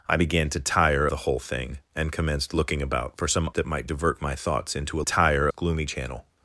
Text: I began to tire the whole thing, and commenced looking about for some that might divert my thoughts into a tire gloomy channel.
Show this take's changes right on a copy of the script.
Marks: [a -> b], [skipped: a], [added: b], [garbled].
I began to tire the whole thing, and commenced looking about for some that might divert my thoughts into a tire gloomy channel.